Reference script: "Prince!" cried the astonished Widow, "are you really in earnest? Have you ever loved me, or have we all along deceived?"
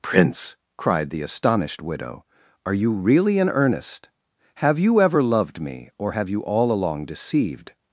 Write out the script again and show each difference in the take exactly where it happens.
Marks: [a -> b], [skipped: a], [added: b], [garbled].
"Prince!" cried the astonished Widow, "are you really in earnest? Have you ever loved me, or have [we -> you] all along deceived?"